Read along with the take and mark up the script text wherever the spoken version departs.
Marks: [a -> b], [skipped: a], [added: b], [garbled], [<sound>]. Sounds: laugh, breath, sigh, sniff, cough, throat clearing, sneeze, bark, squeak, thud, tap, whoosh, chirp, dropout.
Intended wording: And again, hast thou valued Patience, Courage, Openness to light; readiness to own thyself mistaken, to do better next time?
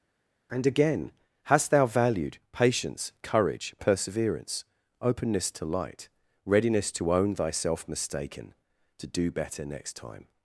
And again, hast thou valued Patience, Courage, [added: Perseverance] Openness to light; readiness to own thyself mistaken, to do better next time?